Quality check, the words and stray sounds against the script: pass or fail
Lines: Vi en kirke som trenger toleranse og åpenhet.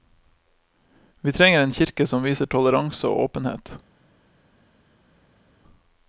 fail